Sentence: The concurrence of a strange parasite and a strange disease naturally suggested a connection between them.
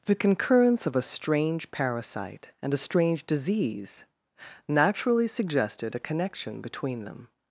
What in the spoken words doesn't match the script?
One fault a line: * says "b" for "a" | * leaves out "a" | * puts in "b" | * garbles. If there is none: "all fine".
all fine